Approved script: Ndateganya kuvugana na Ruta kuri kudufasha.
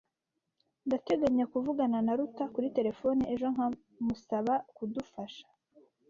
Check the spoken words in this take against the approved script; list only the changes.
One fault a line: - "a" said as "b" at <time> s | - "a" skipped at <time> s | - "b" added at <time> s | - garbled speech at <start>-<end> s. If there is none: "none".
- "terefone ejo nkamusaba" added at 2.8 s